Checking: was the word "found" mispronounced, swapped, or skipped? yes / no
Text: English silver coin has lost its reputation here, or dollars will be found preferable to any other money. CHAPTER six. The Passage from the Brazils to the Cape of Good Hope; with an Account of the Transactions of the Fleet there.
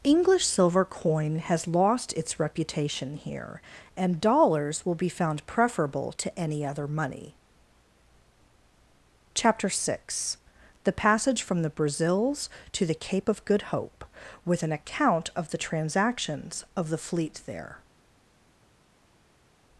no